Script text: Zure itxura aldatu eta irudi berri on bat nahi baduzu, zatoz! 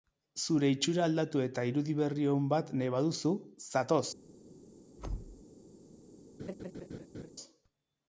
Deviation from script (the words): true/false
false